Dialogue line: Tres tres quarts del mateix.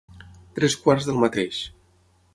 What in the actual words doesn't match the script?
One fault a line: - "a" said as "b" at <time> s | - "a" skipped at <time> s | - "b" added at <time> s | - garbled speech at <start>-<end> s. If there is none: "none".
- "tres" skipped at 0.8 s